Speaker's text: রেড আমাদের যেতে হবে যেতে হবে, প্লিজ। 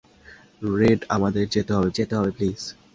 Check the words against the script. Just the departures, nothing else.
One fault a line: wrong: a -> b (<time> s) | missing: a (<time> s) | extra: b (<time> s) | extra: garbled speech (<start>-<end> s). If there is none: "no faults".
no faults